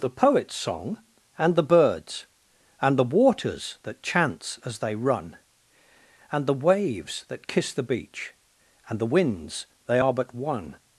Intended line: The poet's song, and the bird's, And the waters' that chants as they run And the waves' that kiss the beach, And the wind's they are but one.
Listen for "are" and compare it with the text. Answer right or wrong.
right